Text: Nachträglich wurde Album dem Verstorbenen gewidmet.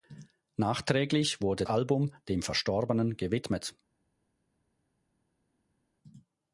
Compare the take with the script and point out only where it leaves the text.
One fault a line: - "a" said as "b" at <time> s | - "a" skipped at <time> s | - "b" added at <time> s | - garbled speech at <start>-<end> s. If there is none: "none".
none